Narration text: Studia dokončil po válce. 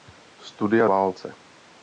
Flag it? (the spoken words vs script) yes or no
yes